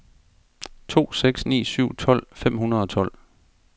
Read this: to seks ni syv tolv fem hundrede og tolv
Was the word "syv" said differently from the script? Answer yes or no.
no